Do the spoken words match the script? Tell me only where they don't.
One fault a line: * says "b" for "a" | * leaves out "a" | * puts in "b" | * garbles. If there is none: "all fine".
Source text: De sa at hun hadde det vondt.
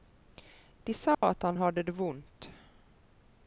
* says "han" for "hun"